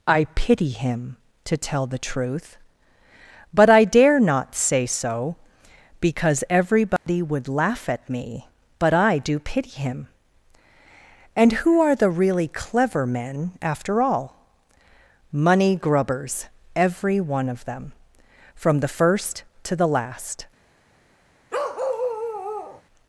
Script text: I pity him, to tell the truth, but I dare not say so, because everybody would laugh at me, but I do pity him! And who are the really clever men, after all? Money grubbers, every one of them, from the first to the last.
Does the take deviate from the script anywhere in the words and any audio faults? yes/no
yes